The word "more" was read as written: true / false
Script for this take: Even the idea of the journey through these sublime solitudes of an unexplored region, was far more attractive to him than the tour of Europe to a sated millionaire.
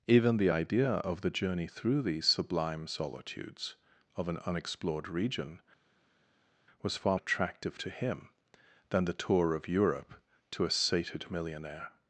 false